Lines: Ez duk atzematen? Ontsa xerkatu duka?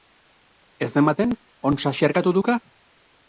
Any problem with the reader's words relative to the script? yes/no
yes